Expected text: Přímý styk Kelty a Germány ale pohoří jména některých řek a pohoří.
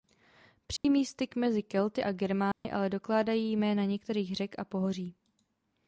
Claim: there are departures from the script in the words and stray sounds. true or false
true